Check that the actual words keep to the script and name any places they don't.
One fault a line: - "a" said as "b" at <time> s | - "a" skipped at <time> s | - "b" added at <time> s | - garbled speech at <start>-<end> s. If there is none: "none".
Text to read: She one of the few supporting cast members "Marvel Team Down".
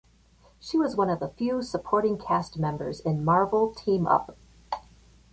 - "was" added at 0.8 s
- "in" added at 3.0 s
- "Down" said as "Up" at 4.1 s